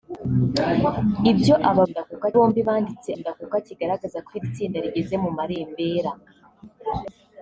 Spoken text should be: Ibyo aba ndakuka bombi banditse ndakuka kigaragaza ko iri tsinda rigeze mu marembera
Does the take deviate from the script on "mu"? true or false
false